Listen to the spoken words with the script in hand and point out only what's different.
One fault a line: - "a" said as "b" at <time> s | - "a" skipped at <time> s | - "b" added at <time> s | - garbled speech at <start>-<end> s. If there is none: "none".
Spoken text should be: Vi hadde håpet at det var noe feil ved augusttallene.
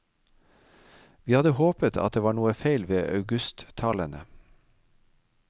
none